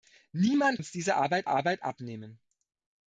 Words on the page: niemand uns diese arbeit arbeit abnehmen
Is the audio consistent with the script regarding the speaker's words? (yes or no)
yes